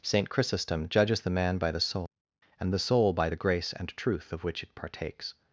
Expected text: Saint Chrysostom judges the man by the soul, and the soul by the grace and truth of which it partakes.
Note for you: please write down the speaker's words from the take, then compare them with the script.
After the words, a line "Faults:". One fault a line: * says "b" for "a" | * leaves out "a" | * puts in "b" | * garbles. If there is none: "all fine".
Saint Chrysostom judges the man by the soul, and the soul by the grace and truth of which it partakes.
Faults:
all fine